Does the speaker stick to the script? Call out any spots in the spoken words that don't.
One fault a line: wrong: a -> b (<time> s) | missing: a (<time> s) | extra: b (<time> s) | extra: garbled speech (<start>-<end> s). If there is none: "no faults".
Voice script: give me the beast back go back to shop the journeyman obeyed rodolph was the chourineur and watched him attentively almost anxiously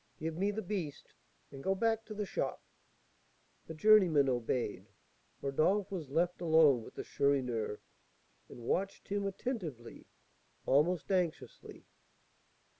wrong: back -> and (1.5 s)
extra: the (2.1 s)
extra: left alone with (6.1 s)